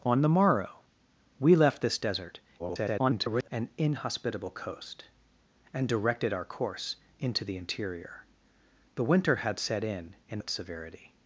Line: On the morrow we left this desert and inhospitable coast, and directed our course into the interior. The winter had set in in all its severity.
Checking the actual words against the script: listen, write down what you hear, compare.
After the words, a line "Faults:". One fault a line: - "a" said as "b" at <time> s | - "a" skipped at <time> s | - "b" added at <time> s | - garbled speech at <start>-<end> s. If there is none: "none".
On the morrow we left this desert [garbled] and inhospitable coast, and directed our course into the interior. The winter had set in in its severity.
Faults:
- garbled speech at 2.6-3.5 s
- "all" skipped at 10.4 s